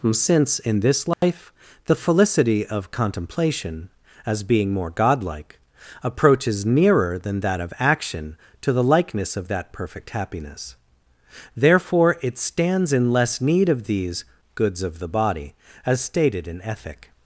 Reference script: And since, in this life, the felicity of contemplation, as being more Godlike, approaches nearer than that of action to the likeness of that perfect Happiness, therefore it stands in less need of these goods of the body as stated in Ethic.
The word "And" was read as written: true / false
false